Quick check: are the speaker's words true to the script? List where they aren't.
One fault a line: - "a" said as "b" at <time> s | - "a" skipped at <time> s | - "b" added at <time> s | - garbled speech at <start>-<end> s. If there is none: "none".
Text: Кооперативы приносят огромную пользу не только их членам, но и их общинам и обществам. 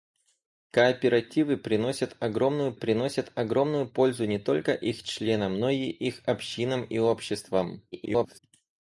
- "приносят огромную" added at 2.7 s
- garbled speech at 7.9-8.4 s